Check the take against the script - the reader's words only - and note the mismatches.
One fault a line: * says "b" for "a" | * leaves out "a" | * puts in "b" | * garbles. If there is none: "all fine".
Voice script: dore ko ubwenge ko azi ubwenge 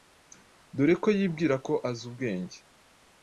* says "yibwira" for "ubwenge"